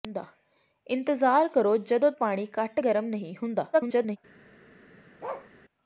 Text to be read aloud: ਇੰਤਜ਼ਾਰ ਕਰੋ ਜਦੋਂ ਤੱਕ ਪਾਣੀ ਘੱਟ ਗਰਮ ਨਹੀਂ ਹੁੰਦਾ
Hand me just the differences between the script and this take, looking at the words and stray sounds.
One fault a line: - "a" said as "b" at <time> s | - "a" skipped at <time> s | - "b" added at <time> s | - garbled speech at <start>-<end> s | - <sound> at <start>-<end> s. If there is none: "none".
- "ਤੱਕ" skipped at 2.1 s
- garbled speech at 3.7-4.2 s
- bark at 5.2-5.5 s